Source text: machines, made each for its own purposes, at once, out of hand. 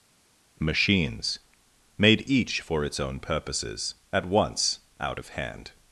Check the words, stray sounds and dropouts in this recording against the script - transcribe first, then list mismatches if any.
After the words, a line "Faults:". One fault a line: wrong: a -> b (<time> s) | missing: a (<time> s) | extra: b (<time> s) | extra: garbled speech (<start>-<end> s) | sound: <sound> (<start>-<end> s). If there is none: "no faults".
machines, made each for its own purposes, at once, out of hand.
Faults:
no faults